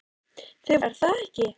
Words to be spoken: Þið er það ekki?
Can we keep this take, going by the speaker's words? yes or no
yes